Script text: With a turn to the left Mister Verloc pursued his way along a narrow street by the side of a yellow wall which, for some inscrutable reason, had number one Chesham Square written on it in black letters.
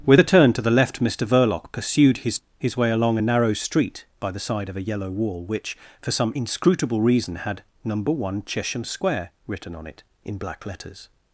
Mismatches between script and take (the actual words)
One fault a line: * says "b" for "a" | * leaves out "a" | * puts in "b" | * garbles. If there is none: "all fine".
* puts in "his"